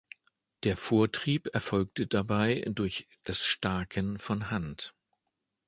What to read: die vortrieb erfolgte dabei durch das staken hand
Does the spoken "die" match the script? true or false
false